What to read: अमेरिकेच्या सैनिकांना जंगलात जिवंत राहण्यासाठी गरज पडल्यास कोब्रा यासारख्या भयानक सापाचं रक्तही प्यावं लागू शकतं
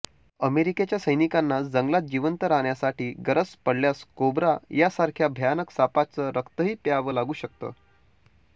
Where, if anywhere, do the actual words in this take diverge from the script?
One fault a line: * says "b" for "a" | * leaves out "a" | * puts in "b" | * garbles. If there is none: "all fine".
all fine